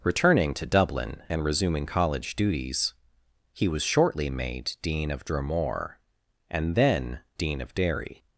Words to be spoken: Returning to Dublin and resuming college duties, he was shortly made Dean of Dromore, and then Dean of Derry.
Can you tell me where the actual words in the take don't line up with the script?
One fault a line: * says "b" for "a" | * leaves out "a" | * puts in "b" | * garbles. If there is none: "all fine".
all fine